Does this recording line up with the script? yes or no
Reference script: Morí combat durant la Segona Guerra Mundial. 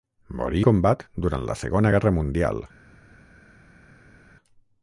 yes